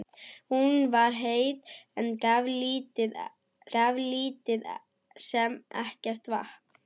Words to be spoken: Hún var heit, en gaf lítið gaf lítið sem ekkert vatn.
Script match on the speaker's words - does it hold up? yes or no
yes